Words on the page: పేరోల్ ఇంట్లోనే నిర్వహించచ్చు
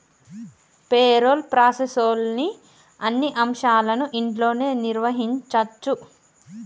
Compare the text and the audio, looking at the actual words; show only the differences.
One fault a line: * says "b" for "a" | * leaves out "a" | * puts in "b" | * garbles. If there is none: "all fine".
* puts in "ప్రాసెస్లోని అన్ని అంశాలను"